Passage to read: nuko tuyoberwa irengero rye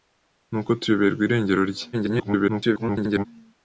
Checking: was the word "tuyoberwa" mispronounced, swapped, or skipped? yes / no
no